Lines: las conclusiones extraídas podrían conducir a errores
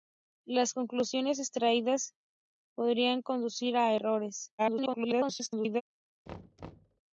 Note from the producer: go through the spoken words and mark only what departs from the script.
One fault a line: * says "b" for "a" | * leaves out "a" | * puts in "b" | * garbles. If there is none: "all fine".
* garbles